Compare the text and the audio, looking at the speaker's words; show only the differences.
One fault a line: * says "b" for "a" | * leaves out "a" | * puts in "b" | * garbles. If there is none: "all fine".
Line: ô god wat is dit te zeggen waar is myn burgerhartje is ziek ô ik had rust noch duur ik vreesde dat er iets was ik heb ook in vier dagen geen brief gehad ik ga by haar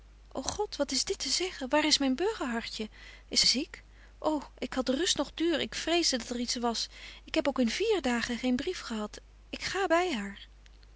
all fine